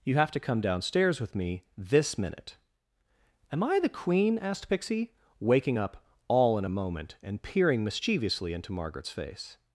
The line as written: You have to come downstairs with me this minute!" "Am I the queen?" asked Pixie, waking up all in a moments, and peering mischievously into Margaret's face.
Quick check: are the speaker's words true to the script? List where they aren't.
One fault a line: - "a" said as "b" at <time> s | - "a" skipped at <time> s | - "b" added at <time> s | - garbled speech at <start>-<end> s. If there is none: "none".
- "moments" said as "moment" at 6.7 s